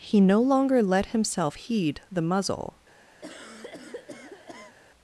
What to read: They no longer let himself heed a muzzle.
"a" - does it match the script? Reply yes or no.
no